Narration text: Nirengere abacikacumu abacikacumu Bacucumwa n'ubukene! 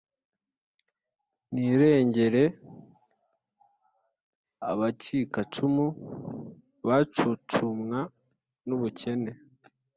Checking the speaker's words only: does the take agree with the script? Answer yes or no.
no